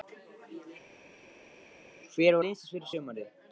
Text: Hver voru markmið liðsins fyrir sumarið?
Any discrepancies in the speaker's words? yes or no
yes